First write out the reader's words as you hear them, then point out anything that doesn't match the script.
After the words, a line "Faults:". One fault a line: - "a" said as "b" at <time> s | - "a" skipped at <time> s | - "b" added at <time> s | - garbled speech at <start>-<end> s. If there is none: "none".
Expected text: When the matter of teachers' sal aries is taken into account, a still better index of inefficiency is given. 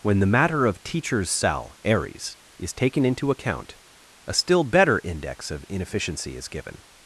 When the matter of teachers' cell aries is taken into account, a still better index of inefficiency is given.
Faults:
- "sal" said as "cell" at 1.3 s